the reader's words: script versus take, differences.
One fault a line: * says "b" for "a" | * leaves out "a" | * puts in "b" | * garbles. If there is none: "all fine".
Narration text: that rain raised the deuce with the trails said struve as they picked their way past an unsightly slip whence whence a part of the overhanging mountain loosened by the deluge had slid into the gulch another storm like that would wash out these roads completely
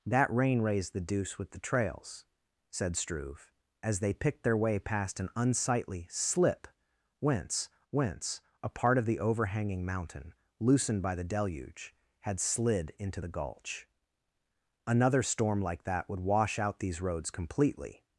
all fine